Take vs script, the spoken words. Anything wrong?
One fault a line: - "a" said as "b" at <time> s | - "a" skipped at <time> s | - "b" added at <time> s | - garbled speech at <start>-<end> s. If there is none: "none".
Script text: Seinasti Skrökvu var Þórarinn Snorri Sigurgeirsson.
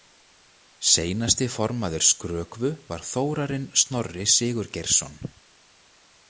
- "formaður" added at 1.6 s